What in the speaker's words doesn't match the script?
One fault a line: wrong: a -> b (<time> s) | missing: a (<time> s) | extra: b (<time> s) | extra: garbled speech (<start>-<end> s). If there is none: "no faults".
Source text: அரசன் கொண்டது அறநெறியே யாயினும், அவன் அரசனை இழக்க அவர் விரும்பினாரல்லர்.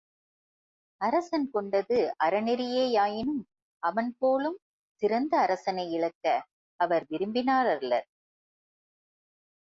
extra: போலும் சிறந்த (4.2 s)